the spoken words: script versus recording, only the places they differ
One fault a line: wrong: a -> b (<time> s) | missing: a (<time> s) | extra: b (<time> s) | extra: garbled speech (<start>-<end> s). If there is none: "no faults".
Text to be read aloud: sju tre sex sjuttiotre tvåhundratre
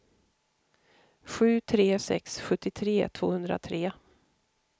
no faults